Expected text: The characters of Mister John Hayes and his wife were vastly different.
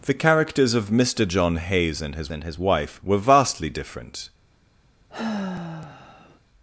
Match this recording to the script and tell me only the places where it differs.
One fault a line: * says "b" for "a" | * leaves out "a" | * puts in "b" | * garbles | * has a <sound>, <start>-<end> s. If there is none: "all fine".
* puts in "and his"
* has a sigh, 5.1-6.4 s